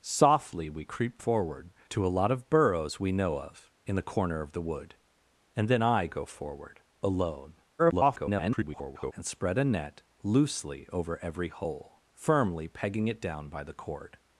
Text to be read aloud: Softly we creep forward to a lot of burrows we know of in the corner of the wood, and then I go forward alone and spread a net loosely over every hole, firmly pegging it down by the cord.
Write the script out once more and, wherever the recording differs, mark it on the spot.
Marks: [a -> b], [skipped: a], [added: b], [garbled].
Softly we creep forward to a lot of burrows we know of in the corner of the wood, and then I go forward alone [garbled] and spread a net loosely over every hole, firmly pegging it down by the cord.